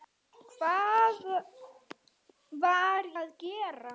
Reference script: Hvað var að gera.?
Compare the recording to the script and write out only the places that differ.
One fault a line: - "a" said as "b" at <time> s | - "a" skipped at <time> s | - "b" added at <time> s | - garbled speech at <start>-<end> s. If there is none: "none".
none